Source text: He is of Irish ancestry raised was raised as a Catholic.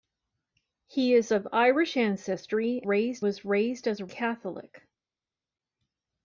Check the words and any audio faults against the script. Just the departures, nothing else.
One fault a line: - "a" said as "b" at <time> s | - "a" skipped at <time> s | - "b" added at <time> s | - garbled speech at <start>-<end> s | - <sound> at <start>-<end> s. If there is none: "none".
none